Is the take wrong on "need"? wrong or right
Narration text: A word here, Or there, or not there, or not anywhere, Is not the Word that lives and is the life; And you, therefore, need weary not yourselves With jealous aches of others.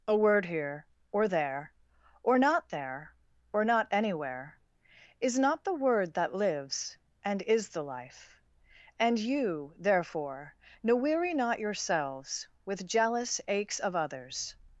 wrong